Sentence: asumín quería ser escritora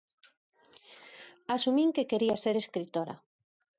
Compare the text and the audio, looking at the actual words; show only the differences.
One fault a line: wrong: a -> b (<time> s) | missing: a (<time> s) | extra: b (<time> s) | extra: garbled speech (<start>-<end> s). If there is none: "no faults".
extra: que (1.9 s)